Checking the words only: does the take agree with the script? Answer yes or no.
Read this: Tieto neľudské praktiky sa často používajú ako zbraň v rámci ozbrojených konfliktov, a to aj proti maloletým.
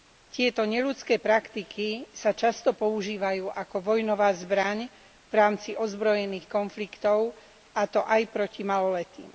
no